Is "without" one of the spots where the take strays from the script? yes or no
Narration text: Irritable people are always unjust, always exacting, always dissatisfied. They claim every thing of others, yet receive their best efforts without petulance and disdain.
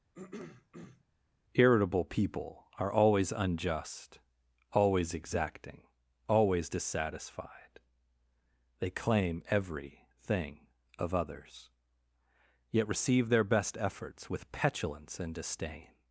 yes